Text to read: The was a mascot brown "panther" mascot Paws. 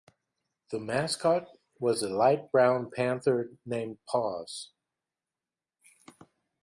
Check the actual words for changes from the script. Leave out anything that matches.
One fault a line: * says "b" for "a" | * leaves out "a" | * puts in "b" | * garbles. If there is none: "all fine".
* puts in "mascot"
* says "light" for "mascot"
* says "named" for "mascot"